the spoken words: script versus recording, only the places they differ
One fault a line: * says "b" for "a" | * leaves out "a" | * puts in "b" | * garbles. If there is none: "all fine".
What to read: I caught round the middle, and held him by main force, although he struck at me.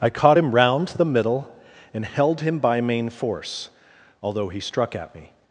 * puts in "him"